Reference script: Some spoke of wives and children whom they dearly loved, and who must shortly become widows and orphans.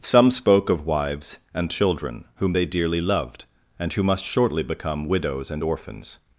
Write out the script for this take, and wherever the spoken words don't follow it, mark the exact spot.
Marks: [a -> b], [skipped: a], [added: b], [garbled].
Some spoke of wives and children whom they dearly loved, and who must shortly become widows and orphans.